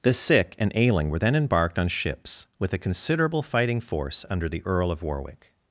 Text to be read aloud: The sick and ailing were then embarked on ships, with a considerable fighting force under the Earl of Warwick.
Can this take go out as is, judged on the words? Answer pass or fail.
pass